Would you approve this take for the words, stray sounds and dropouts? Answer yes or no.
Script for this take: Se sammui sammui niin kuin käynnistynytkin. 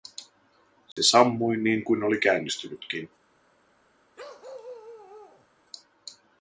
no